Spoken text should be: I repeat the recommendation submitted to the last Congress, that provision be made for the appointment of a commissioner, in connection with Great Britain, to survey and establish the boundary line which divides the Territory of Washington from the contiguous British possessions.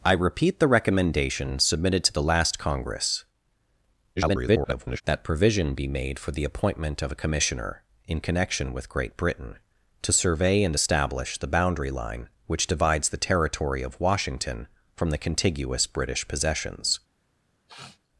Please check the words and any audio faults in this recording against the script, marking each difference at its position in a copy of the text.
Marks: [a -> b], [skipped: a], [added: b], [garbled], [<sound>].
I repeat the recommendation submitted to the last Congress, [garbled] that provision be made for the appointment of a commissioner, in connection with Great Britain, to survey and establish the boundary line which divides the Territory of Washington from the contiguous British possessions. [sniff]